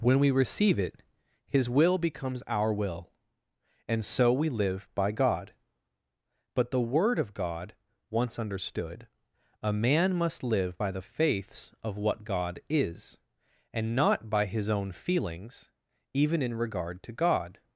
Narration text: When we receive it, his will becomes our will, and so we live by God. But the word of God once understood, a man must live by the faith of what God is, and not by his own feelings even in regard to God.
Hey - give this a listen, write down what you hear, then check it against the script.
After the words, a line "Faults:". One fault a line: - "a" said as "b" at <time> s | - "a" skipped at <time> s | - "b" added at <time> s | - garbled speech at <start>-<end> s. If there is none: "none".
When we receive it, his will becomes our will, and so we live by God. But the word of God once understood, a man must live by the faiths of what God is, and not by his own feelings even in regard to God.
Faults:
- "faith" said as "faiths" at 11.0 s